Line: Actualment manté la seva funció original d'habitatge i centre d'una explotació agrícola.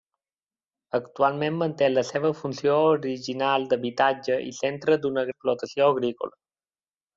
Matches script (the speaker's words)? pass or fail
pass